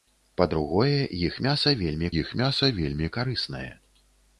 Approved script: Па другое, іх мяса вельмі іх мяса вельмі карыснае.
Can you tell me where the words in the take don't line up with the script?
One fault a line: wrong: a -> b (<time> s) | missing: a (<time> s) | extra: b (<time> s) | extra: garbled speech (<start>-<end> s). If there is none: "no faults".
no faults